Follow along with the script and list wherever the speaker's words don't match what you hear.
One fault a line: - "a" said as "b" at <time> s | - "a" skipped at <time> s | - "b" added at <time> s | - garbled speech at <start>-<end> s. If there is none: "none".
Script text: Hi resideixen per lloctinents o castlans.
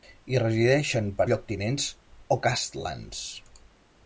none